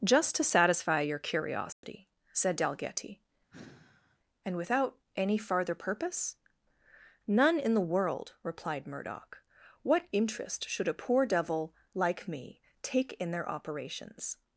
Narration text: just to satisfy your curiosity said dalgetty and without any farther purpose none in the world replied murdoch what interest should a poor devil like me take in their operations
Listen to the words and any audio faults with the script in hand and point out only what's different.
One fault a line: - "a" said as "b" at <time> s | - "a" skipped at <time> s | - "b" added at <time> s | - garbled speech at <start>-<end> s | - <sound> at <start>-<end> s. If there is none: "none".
- dropout at 1.7-1.8 s
- sigh at 3.5-4.2 s